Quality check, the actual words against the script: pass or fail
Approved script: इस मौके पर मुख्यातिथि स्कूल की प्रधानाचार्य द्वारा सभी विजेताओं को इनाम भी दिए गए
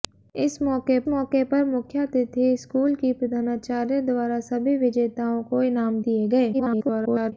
fail